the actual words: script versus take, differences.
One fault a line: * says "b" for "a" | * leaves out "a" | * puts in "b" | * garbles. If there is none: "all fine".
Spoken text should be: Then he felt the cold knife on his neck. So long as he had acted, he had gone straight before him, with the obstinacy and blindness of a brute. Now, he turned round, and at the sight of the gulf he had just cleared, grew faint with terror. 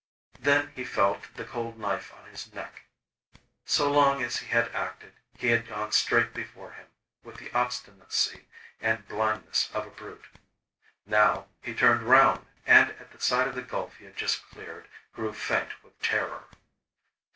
all fine